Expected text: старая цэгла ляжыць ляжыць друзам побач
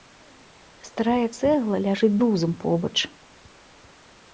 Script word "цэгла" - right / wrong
right